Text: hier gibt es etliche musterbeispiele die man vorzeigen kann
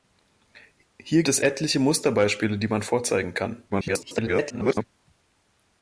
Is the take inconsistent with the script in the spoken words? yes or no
yes